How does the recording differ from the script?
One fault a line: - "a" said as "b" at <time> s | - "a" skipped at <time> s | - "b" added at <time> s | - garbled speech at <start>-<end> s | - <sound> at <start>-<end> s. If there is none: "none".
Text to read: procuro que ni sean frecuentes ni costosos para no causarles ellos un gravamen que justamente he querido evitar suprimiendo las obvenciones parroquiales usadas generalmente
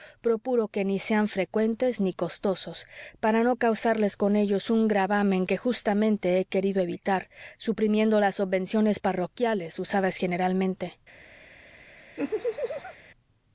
- "con" added at 4.2 s
- laugh at 12.2-13.0 s